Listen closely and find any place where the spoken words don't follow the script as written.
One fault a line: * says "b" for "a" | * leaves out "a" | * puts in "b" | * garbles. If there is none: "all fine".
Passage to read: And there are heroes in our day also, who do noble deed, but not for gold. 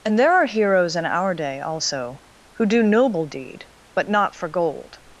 all fine